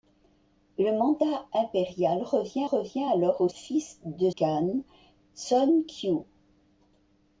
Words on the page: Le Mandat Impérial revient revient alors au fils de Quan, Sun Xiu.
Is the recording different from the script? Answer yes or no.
no